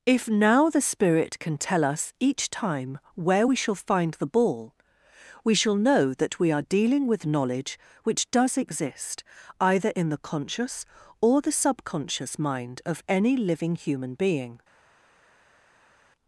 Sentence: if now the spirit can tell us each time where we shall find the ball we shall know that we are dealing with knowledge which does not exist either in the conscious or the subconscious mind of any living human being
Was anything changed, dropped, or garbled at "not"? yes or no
yes